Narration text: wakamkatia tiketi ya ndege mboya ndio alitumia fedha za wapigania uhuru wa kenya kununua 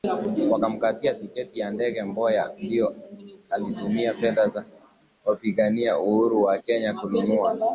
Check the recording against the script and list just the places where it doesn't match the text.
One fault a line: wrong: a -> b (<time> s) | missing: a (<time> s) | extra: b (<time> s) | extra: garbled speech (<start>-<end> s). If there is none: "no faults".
no faults